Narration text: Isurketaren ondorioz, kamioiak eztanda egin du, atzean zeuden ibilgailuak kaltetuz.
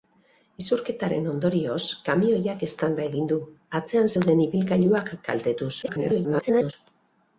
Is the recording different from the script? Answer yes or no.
yes